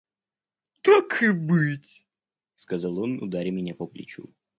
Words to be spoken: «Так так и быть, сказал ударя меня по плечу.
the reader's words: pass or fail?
fail